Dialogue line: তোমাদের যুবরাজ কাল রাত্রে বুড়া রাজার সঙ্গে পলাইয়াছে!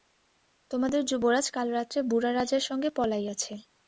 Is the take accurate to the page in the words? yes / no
yes